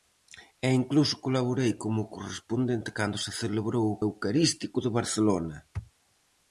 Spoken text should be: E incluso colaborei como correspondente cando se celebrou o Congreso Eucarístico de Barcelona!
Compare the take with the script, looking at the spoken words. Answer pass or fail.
fail